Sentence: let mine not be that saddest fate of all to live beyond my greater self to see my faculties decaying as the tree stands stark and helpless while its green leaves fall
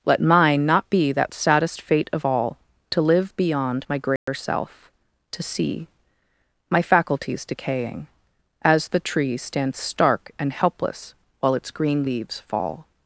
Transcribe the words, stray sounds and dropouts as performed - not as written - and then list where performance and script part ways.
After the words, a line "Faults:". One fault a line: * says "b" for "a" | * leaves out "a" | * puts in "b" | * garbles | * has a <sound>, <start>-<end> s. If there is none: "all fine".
let mine not be that saddest fate of all to live beyond my greater self to see my faculties decaying as the tree stands stark and helpless while its green leaves fall
Faults:
* has a dropout, 4.2-4.3 s